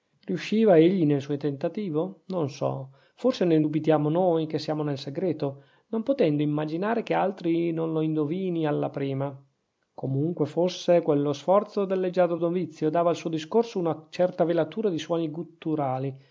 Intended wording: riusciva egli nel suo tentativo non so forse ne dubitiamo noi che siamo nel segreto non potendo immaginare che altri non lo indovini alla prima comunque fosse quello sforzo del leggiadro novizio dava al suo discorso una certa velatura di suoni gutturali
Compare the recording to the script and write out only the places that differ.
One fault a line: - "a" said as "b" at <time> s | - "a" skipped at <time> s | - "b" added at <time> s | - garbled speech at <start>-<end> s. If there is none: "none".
none